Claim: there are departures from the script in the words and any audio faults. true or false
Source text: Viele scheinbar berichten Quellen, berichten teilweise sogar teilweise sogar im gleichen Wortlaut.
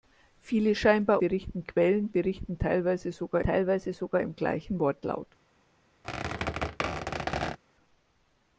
true